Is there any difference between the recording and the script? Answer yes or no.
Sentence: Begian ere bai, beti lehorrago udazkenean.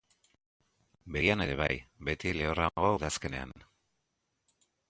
no